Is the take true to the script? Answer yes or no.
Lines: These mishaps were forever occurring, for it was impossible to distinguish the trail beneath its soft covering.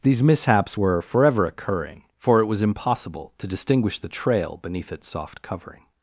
yes